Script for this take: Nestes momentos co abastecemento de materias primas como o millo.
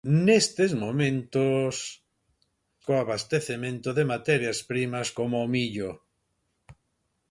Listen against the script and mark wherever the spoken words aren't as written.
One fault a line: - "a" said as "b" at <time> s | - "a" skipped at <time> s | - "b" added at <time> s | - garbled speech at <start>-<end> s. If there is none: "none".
none